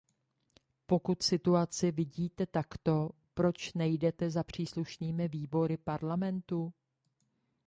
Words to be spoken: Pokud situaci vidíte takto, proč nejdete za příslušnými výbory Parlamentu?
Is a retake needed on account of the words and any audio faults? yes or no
no